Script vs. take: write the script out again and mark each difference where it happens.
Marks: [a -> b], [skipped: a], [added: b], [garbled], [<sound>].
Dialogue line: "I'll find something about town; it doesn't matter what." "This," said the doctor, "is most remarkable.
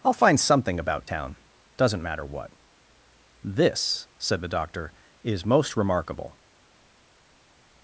"I'll find something about town; [skipped: it] doesn't matter what." "This," said the doctor, "is most remarkable.